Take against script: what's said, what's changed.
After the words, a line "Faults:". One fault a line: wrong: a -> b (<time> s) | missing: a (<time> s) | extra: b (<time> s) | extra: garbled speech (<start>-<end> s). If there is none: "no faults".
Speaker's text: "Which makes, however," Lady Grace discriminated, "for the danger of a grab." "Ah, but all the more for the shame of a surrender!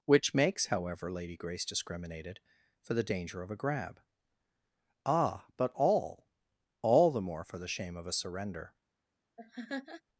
"Which makes, however," Lady Grace discriminated, "for the danger of a grab." "Ah, but all all the more for the shame of a surrender!
Faults:
extra: all (6.8 s)